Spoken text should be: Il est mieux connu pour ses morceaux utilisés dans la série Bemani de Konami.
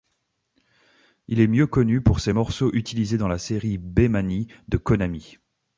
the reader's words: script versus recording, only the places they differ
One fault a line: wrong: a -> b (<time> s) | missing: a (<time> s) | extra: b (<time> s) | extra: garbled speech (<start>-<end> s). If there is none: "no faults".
no faults